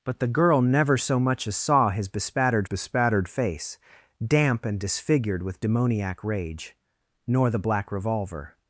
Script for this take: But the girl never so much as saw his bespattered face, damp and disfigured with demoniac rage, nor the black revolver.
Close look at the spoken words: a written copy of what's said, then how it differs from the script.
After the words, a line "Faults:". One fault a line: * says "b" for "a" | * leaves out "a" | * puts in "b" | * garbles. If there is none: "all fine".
But the girl never so much as saw his bespattered bespattered face, damp and disfigured with demoniac rage, nor the black revolver.
Faults:
* puts in "bespattered"